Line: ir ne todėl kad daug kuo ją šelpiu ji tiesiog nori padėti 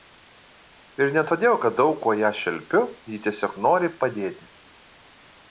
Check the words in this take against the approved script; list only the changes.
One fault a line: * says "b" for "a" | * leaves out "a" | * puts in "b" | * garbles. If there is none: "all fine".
all fine